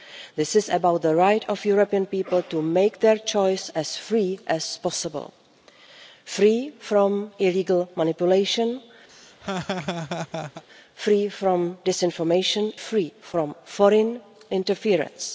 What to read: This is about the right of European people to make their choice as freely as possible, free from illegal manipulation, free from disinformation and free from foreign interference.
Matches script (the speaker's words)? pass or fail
fail